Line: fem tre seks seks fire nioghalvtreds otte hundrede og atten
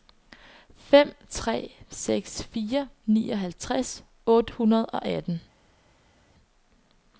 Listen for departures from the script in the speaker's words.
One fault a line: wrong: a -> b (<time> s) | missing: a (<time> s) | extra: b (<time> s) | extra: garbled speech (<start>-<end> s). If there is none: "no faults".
missing: seks (2.4 s)